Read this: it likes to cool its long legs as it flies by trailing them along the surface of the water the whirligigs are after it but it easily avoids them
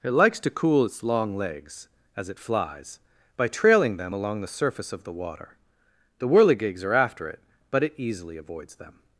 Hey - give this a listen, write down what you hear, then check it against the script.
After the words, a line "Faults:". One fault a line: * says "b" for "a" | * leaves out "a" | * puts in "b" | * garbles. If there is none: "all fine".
it likes to cool its long legs as it flies by trailing them along the surface of the water the whirligigs are after it but it easily avoids them
Faults:
all fine